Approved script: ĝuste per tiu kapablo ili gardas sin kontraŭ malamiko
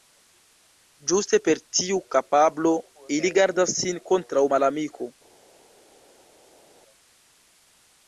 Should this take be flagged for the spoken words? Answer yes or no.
no